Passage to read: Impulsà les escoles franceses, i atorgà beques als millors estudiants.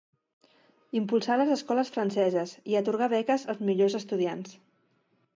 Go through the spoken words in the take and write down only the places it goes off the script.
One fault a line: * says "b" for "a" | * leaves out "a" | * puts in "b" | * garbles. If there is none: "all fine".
all fine